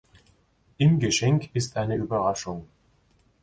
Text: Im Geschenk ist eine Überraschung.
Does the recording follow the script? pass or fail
pass